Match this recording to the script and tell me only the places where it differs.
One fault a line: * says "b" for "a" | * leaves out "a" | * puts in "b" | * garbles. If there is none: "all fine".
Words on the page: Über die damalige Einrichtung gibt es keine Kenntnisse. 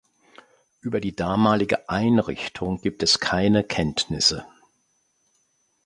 all fine